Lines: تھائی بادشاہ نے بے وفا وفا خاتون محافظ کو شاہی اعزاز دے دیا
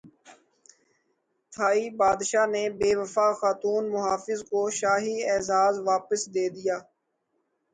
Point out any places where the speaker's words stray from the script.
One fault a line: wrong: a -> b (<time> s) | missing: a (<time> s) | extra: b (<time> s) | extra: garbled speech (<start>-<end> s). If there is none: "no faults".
missing: وفا (3.3 s)
extra: واپس (5.9 s)